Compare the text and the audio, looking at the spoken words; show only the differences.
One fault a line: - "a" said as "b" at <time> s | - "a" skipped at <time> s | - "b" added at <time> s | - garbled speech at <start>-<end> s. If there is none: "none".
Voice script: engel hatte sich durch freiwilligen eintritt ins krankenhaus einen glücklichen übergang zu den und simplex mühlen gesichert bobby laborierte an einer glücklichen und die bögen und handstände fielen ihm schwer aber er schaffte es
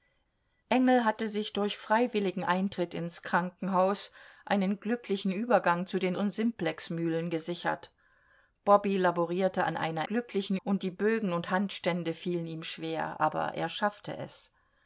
none